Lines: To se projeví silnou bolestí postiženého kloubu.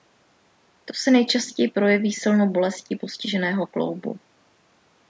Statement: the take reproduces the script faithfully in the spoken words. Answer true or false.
false